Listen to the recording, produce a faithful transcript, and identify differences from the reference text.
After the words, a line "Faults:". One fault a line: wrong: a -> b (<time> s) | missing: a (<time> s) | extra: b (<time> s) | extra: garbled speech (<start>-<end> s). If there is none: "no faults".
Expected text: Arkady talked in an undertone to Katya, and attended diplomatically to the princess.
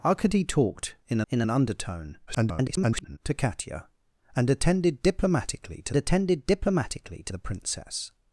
Arkady talked in in an undertone [garbled] to Katya, and attended diplomatically to attended diplomatically to the princess.
Faults:
extra: in (1.3 s)
extra: garbled speech (2.3-3.2 s)
extra: attended diplomatically to (6.0 s)